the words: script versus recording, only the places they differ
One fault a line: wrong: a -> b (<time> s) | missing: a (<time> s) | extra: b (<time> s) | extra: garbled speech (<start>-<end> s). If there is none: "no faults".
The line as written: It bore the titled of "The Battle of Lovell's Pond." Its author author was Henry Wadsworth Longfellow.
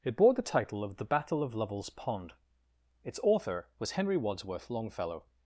wrong: titled -> title (0.4 s)
missing: author (3.7 s)